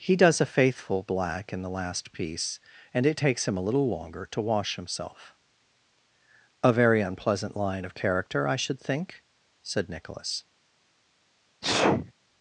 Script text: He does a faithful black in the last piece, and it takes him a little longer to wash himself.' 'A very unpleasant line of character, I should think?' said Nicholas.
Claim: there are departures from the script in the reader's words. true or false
false